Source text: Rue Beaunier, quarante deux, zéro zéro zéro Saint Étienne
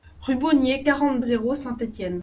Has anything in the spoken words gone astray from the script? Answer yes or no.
yes